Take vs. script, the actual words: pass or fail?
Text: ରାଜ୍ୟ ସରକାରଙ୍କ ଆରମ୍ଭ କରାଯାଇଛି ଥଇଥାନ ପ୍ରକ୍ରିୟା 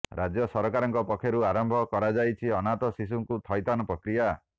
fail